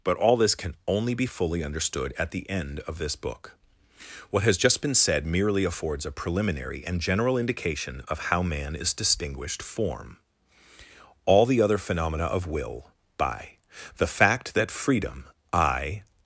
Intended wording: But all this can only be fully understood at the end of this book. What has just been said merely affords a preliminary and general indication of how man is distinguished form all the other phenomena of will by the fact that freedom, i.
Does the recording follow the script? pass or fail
pass